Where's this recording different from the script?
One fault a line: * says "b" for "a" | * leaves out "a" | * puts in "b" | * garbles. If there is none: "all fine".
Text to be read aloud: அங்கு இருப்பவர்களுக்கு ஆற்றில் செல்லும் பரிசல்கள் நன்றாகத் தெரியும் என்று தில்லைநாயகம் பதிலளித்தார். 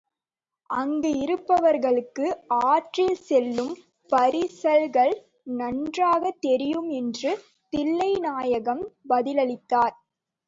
all fine